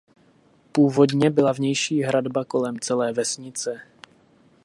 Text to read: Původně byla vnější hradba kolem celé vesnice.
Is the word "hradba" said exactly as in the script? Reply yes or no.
yes